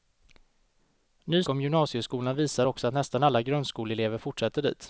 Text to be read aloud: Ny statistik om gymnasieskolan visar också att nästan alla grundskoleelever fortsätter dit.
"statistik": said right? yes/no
no